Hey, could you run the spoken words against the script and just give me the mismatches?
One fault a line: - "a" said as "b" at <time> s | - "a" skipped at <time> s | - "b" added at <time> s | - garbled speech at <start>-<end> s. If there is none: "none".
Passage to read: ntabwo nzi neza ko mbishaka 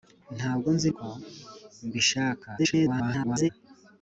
- "neza" skipped at 0.9 s
- garbled speech at 2.6-3.5 s